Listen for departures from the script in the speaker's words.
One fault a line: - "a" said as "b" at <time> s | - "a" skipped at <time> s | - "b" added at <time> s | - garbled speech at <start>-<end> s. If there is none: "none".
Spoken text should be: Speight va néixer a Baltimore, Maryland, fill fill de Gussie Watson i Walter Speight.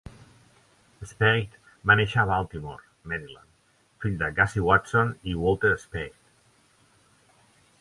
- "fill" skipped at 4.2 s